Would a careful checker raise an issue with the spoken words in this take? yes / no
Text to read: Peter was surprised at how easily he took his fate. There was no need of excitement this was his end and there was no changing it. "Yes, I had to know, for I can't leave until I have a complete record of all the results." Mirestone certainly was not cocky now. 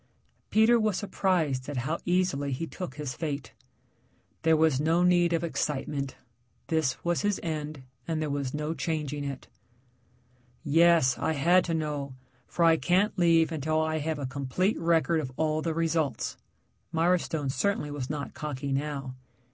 no